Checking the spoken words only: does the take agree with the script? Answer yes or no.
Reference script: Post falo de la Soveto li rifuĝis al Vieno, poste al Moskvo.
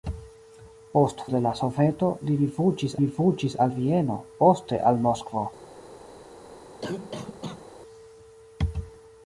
no